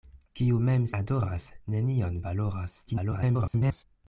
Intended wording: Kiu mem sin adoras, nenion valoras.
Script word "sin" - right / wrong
wrong